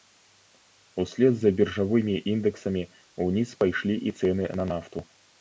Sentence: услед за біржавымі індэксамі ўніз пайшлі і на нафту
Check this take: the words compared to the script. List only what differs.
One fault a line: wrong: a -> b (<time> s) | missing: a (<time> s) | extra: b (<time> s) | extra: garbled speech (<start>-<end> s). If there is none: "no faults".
extra: цэны (4.2 s)